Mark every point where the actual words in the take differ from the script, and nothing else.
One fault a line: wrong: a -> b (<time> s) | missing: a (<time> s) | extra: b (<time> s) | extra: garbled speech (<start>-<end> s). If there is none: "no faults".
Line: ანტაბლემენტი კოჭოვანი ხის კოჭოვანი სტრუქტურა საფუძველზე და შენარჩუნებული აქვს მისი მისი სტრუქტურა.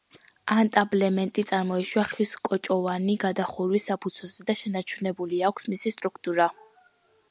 wrong: კოჭოვანი -> წარმოიშვა (1.5 s)
wrong: სტრუქტურა -> გადახურვის (3.2 s)
missing: მისი (5.9 s)